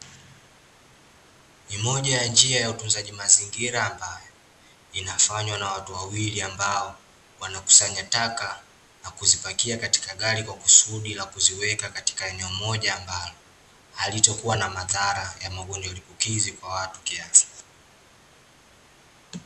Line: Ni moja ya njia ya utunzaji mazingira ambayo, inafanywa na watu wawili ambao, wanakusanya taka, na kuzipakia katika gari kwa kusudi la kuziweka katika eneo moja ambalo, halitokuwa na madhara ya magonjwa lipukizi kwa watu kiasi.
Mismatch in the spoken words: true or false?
false